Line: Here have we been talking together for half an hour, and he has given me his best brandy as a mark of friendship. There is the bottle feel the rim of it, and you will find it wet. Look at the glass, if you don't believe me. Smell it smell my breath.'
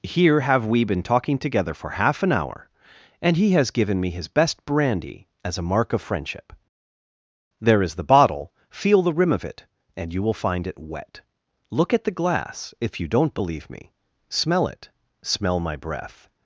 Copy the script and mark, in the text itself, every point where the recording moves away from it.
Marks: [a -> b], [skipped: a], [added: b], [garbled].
Here have we been talking together for half an hour, and he has given me his best brandy as a mark of friendship. There is the bottle feel the rim of it, and you will find it wet. Look at the glass, if you don't believe me. Smell it smell my breath.'